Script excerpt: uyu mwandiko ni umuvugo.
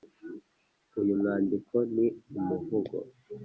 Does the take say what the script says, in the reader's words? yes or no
yes